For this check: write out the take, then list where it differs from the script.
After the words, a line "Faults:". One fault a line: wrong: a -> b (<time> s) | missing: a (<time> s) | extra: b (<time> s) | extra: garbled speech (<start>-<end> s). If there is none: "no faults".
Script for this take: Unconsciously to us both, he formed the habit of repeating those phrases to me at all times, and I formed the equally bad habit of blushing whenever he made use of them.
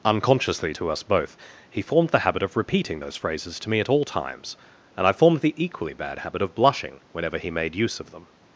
Unconsciously to us both, he formed the habit of repeating those phrases to me at all times, and I formed the equally bad habit of blushing whenever he made use of them.
Faults:
no faults